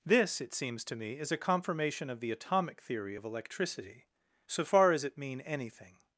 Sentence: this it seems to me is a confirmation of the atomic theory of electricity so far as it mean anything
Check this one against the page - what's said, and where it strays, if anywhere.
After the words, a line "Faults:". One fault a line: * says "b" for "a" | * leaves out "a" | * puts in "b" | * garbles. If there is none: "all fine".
this it seems to me is a confirmation of the atomic theory of electricity so far as it mean anything
Faults:
all fine